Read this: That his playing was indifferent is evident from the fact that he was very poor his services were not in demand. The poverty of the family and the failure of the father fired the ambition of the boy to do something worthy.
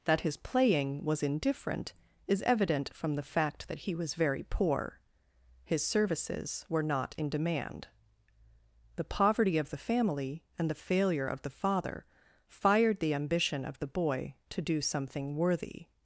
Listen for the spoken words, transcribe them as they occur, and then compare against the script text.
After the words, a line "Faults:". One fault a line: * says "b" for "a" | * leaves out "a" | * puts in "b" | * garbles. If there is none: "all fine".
That his playing was indifferent is evident from the fact that he was very poor his services were not in demand. The poverty of the family and the failure of the father fired the ambition of the boy to do something worthy.
Faults:
all fine